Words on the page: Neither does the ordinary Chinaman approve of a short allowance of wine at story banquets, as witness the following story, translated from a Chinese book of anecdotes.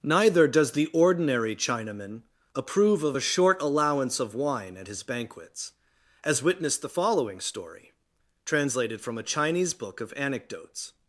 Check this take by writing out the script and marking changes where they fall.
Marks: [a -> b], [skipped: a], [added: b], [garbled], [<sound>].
Neither does the ordinary Chinaman approve of a short allowance of wine at [story -> his] banquets, as witness the following story, translated from a Chinese book of anecdotes.